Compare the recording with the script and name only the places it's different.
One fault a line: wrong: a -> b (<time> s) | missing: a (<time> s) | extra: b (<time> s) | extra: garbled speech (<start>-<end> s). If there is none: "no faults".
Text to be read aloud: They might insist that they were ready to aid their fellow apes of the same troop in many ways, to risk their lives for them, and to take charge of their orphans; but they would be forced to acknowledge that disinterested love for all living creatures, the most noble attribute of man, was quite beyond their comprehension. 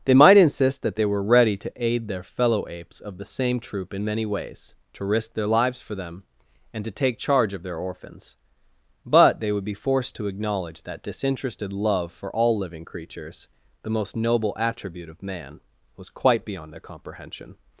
no faults